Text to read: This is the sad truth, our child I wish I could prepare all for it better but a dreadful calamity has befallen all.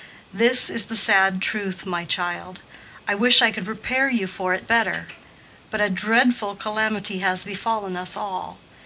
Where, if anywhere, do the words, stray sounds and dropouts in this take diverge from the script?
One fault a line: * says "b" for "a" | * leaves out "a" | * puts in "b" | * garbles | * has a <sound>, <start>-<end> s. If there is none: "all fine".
* says "my" for "our"
* says "you" for "all"
* puts in "us"